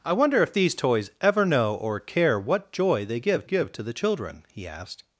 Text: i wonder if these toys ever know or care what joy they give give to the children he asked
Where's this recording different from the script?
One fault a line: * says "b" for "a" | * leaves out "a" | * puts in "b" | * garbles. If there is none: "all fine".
all fine